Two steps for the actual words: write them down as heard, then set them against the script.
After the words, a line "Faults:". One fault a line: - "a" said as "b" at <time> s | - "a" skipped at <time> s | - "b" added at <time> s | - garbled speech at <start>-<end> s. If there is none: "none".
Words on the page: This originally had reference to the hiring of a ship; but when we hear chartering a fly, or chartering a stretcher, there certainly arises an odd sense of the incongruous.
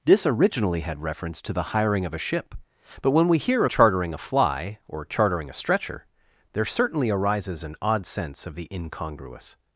This originally had reference to the hiring of a ship; but when we hear chartering a fly, or chartering a stretcher, there certainly arises an odd sense of the incongruous.
Faults:
none